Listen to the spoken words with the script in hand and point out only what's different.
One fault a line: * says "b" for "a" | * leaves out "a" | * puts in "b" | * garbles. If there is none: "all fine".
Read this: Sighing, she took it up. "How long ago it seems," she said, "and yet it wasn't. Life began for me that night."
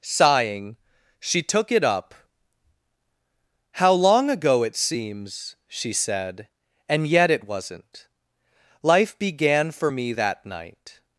all fine